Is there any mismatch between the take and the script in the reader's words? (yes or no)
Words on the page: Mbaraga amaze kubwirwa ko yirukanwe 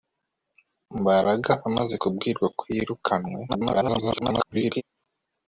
yes